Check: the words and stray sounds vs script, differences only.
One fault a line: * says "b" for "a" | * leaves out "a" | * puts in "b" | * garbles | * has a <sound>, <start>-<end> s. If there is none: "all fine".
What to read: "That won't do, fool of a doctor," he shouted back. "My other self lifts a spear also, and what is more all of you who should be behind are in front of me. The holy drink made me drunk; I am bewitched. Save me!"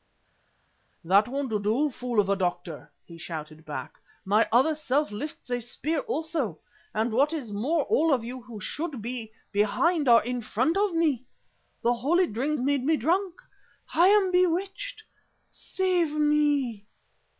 all fine